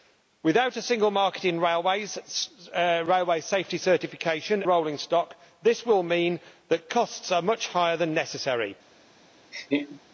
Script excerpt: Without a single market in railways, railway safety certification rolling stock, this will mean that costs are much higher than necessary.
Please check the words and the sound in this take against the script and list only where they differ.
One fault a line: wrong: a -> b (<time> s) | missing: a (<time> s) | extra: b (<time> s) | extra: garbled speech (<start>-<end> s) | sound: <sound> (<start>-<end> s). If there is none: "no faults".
sound: laugh (9.5-10.0 s)